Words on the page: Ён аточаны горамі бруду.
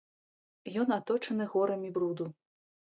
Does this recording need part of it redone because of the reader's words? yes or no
no